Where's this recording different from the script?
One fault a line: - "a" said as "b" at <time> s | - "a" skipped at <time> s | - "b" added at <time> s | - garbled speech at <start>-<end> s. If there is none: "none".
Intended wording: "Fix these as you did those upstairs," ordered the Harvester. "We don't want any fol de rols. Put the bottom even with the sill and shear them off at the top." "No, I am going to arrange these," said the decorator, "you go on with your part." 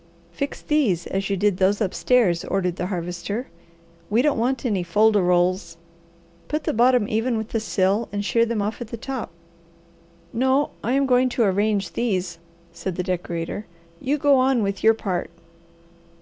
none